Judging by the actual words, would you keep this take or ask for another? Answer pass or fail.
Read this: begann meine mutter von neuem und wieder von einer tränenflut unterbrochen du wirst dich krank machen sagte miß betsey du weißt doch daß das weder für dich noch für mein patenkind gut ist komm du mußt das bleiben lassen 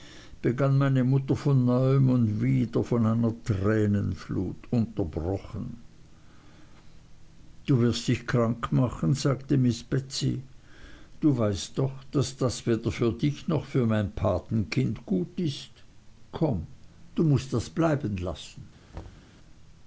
pass